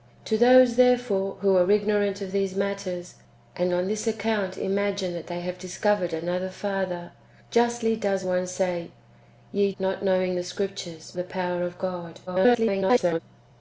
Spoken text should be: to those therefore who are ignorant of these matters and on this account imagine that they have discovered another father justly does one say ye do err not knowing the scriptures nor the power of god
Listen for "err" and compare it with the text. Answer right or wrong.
wrong